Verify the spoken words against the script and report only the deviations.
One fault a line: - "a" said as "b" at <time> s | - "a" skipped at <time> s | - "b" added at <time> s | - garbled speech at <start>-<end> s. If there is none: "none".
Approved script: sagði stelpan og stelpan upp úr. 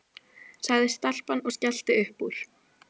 - "stelpan" said as "skellti" at 1.6 s